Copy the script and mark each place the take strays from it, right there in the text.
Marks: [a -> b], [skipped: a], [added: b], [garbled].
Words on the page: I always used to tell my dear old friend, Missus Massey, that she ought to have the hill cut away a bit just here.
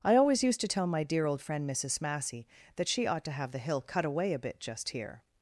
I always used to tell my dear old friend, Missus Massey, that she ought to have the hill cut away a bit just here.